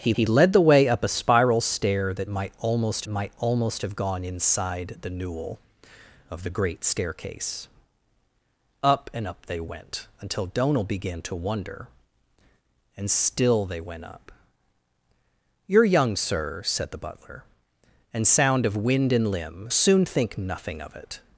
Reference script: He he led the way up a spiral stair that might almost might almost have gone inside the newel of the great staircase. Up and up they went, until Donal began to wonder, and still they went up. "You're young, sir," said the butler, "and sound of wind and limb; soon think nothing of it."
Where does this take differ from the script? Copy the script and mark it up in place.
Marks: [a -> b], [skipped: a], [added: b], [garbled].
He he led the way up a spiral stair that might almost might almost have gone inside the newel of the great staircase. Up and up they went, until Donal began to wonder, and still they went up. "You're young, sir," said the butler, "and sound of wind and limb; soon think nothing of it."